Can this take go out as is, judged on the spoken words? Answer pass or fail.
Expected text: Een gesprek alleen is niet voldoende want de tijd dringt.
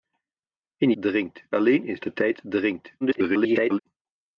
fail